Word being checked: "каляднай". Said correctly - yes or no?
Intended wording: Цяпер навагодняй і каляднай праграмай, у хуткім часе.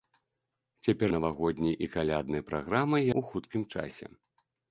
yes